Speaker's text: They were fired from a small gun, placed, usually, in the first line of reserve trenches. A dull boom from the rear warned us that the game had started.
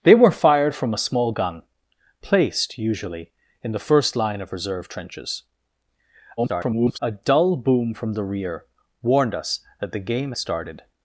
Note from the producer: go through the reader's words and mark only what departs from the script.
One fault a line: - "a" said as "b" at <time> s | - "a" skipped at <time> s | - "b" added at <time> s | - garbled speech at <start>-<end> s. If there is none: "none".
- garbled speech at 6.4-7.0 s
- "had" skipped at 10.3 s